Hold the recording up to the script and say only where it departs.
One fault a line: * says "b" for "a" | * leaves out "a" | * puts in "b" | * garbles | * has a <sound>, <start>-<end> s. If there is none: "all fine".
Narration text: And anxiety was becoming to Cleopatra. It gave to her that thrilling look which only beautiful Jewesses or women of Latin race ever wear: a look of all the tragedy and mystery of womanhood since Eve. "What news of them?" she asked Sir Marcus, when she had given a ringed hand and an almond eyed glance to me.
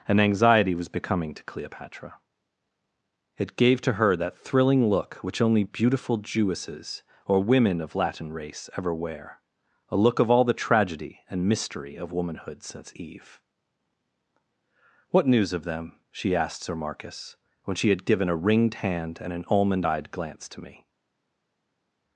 all fine